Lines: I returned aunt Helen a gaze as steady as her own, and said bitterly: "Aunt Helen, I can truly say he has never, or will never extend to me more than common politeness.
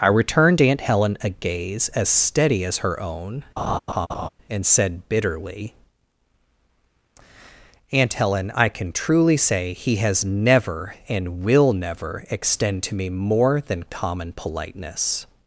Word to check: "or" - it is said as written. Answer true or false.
false